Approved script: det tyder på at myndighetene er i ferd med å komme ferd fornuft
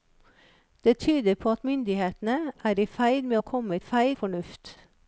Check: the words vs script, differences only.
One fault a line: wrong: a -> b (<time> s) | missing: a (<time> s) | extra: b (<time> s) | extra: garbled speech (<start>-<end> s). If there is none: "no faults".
no faults